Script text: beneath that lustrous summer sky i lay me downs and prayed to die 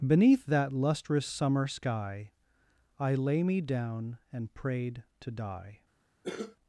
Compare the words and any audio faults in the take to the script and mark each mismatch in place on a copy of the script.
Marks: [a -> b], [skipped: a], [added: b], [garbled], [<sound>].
beneath that lustrous summer sky i lay me [downs -> down] and prayed to die [cough]